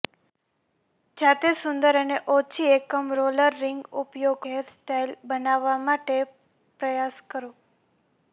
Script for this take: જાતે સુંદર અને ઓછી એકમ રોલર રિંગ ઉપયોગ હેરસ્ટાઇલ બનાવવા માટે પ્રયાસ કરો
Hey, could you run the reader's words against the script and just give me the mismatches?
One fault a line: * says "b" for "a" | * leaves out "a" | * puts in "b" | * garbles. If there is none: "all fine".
all fine